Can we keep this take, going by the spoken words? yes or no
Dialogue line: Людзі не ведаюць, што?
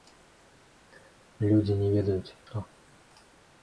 yes